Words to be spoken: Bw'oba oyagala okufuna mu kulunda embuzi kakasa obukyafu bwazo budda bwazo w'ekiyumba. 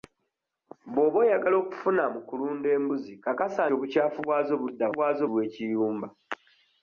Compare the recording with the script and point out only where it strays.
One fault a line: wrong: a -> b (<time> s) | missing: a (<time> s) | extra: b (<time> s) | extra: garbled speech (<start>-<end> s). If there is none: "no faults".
no faults